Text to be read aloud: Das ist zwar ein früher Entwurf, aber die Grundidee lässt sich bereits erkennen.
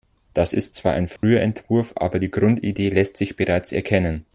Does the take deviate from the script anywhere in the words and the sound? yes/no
yes